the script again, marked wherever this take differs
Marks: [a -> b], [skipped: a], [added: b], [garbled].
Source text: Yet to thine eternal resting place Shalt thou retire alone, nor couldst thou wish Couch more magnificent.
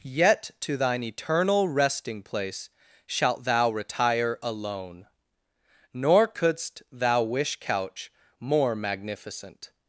Yet to thine eternal resting place Shalt thou retire alone, nor couldst thou wish Couch more magnificent.